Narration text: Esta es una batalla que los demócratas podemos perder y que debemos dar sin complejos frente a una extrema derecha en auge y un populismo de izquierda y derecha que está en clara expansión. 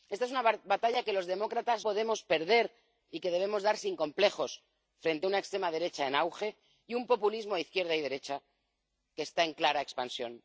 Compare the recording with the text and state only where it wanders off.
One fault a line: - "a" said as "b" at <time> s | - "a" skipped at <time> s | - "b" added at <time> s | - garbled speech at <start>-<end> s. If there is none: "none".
none